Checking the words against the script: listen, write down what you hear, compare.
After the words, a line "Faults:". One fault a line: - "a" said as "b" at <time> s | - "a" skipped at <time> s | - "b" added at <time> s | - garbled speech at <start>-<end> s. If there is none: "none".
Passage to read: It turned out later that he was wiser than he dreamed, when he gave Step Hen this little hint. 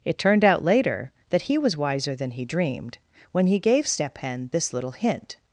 It turned out later that he was wiser than he dreamed, when he gave Step Hen this little hint.
Faults:
none